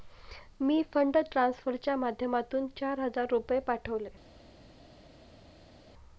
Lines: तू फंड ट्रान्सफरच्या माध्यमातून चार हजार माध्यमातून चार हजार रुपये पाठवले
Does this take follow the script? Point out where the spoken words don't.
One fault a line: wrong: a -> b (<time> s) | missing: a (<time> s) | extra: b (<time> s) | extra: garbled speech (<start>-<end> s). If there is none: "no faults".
wrong: तू -> मी (0.6 s)
missing: माध्यमातून चार हजार (3.2 s)